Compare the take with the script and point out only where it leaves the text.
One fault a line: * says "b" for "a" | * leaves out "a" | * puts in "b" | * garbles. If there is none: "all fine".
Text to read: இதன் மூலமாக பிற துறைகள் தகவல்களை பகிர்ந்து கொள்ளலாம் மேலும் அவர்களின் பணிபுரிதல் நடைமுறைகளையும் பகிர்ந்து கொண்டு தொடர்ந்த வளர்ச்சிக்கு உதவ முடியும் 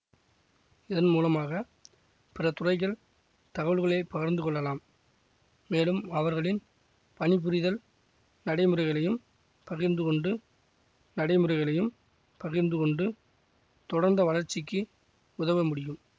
* puts in "நடைமுறைகளையும் பகிர்ந்து கொண்டு"